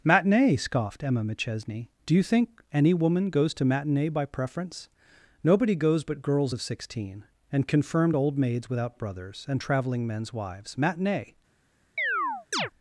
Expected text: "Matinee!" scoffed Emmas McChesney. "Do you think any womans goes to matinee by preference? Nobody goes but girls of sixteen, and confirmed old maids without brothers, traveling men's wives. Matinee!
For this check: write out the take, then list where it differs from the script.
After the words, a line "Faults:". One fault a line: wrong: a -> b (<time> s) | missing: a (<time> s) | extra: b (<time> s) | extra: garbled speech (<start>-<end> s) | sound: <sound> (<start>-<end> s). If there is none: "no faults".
"Matinee!" scoffed Emma McChesney. "Do you think any woman goes to matinee by preference? Nobody goes but girls of sixteen, and confirmed old maids without brothers, and traveling men's wives. Matinee!
Faults:
wrong: Emmas -> Emma (1.0 s)
wrong: womans -> woman (2.9 s)
extra: and (9.5 s)
sound: chirp (12.0-12.7 s)